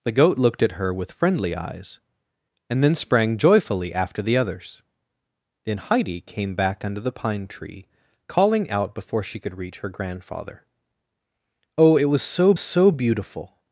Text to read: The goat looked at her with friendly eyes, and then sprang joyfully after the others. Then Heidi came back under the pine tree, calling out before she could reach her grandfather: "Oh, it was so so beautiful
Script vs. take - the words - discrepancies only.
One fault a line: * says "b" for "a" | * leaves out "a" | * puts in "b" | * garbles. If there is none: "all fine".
all fine